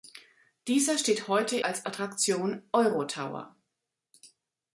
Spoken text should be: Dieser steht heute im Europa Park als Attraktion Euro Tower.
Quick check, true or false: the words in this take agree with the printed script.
false